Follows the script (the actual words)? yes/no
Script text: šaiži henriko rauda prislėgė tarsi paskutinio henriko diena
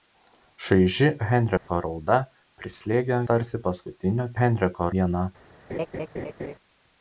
yes